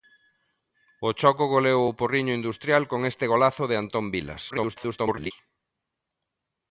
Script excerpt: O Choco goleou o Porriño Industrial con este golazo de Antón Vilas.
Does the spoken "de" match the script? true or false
true